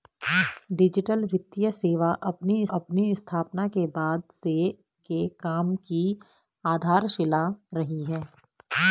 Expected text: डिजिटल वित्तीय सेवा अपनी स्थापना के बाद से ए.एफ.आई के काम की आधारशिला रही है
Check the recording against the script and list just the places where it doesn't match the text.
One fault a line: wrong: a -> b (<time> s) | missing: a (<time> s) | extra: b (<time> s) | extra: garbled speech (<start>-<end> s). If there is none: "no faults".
extra: अपनी (2.8 s)
missing: ए.एफ.आई (4.5 s)